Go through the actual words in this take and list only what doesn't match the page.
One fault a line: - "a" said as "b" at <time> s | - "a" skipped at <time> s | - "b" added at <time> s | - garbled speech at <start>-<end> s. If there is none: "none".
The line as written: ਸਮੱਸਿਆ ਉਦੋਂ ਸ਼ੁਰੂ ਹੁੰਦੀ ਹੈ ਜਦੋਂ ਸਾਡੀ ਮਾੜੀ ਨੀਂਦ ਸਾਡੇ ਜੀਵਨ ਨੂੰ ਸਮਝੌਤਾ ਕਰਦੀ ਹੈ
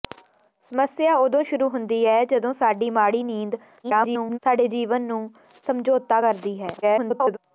- garbled speech at 3.8-4.4 s
- garbled speech at 6.8-7.4 s